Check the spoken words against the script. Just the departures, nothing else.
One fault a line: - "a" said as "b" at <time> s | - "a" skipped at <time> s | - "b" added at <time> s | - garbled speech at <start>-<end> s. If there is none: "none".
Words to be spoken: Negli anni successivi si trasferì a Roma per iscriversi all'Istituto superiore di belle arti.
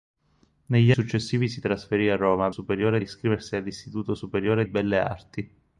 - "anni" skipped at 0.9 s
- "per" said as "superiore" at 2.5 s
- "di" skipped at 4.6 s